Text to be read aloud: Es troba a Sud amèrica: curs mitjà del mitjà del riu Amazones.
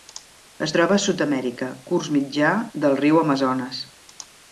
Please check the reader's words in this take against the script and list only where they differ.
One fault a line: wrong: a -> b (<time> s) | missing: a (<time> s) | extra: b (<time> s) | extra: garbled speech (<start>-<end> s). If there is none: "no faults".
missing: mitjà del (3.0 s)